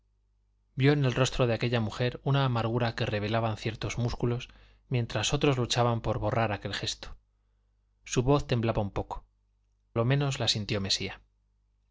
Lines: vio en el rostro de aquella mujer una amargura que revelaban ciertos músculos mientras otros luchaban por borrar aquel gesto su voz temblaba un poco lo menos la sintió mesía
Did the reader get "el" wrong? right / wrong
right